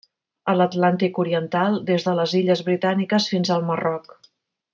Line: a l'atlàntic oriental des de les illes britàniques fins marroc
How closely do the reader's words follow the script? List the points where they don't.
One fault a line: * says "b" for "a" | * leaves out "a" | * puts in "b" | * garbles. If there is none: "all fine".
* puts in "al"